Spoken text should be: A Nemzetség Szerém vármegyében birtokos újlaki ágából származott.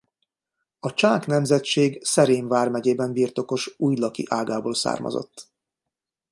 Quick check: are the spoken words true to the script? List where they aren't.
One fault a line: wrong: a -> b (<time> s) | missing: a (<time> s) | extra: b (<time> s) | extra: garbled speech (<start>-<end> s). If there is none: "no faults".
extra: Csák (0.9 s)